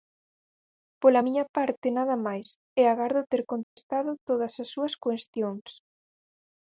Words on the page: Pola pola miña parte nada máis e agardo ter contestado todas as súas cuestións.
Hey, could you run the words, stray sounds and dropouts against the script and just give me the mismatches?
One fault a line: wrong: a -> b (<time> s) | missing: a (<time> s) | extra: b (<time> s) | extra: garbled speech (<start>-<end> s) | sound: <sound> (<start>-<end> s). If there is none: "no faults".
missing: pola (1.2 s)
sound: dropout (3.6-3.8 s)